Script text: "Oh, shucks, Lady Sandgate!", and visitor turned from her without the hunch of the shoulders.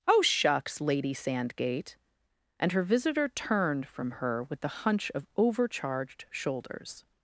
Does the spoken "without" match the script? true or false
false